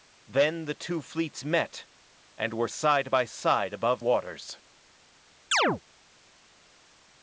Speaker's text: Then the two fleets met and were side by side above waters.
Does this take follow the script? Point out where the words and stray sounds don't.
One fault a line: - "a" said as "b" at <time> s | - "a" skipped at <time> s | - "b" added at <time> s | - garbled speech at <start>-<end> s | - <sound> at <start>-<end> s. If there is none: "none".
- chirp at 5.5-5.8 s